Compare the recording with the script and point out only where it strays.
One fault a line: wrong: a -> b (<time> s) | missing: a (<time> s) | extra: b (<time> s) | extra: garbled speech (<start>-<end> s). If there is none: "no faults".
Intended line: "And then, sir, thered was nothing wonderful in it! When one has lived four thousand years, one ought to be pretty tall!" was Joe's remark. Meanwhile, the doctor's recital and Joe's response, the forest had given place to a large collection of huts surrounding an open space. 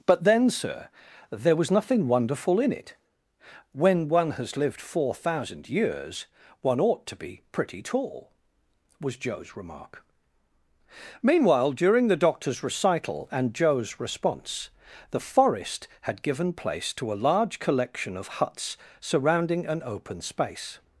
wrong: And -> But (0.1 s)
wrong: thered -> there (1.3 s)
extra: during (11.7 s)